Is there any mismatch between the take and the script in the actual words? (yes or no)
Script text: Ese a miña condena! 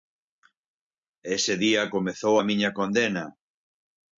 yes